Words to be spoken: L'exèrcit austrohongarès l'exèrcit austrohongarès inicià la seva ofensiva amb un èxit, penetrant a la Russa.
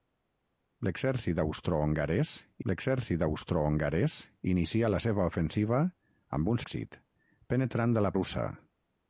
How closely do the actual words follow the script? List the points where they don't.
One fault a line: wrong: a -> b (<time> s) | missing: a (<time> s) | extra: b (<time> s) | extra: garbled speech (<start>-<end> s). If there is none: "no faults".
no faults